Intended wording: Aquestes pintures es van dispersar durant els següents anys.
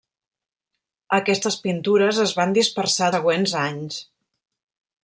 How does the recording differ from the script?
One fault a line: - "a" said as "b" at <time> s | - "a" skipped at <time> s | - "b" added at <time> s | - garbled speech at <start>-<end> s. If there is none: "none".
- "durant els" skipped at 3.1 s